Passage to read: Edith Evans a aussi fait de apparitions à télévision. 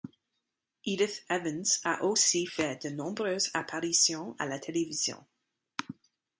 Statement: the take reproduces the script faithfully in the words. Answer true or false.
false